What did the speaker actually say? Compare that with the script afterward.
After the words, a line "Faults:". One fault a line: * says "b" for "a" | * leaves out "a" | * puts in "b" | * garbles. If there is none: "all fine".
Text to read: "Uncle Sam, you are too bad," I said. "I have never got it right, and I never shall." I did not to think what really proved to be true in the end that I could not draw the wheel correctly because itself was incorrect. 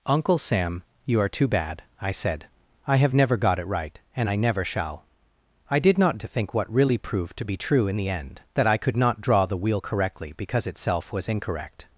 "Uncle Sam, you are too bad," I said. "I have never got it right, and I never shall." I did not to think what really proved to be true in the end that I could not draw the wheel correctly because itself was incorrect.
Faults:
all fine